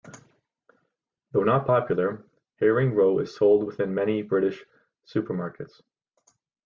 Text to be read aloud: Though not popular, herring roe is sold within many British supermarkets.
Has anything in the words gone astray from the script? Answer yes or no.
no